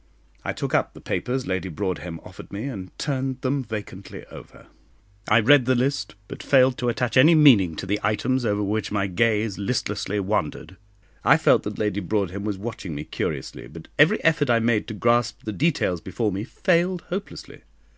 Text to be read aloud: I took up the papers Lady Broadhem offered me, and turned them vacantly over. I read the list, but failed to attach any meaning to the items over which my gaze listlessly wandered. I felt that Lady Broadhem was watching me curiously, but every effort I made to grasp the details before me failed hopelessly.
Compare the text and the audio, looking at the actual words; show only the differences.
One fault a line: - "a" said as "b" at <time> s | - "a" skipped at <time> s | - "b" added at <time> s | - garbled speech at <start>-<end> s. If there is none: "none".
none